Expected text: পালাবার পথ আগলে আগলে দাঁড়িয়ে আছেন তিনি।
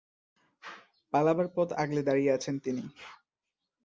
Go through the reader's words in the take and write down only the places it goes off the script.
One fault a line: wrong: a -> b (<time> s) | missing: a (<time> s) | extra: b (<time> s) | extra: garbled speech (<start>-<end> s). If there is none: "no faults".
missing: আগলে (2.0 s)